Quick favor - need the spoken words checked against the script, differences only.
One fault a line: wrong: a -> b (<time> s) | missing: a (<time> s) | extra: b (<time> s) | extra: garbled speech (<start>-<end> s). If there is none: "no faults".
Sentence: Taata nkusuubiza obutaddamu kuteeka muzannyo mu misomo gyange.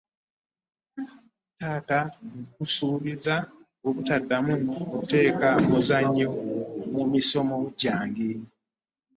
no faults